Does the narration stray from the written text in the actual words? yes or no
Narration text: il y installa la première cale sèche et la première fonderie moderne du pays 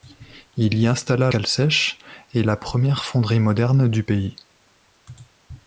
yes